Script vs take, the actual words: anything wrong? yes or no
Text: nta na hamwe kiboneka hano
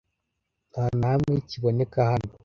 no